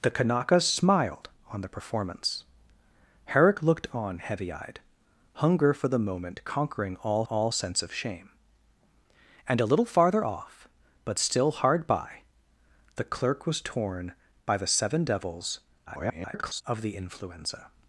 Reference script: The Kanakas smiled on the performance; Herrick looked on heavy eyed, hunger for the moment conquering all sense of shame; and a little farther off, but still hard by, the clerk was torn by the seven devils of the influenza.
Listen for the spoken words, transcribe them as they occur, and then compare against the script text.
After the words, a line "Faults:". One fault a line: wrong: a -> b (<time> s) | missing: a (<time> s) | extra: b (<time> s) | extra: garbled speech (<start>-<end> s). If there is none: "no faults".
The Kanakas smiled on the performance; Herrick looked on heavy eyed, hunger for the moment conquering all all sense of shame; and a little farther off, but still hard by, the clerk was torn by the seven devils [garbled] of the influenza.
Faults:
extra: all (7.3 s)
extra: garbled speech (15.9-16.6 s)